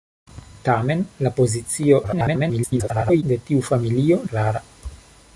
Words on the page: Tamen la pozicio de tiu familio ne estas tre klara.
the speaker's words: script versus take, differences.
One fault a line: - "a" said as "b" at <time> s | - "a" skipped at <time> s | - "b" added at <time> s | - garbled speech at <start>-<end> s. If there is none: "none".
- garbled speech at 2.0-3.2 s
- "ne estas tre" skipped at 4.2 s